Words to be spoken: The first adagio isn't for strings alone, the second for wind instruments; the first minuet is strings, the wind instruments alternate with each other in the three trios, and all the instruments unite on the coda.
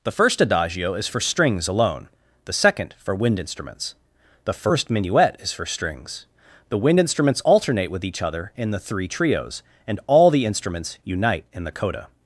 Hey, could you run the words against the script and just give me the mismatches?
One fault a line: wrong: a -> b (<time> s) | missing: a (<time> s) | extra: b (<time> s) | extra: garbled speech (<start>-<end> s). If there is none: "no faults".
wrong: isn't -> is (0.9 s)
extra: for (5.5 s)
wrong: on -> in (11.5 s)